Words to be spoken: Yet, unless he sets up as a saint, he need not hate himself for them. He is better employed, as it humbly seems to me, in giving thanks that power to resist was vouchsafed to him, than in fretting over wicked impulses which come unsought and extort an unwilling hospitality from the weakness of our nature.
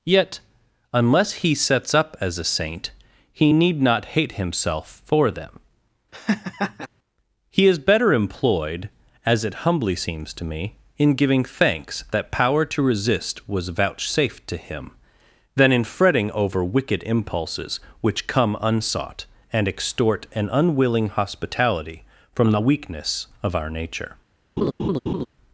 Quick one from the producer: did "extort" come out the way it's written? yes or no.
yes